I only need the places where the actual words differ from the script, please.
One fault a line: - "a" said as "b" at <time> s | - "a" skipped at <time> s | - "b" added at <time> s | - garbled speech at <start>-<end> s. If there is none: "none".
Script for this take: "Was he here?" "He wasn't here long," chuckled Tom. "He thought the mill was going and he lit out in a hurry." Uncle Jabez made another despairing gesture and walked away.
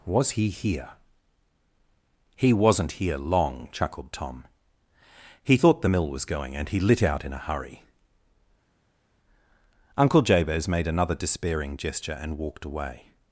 none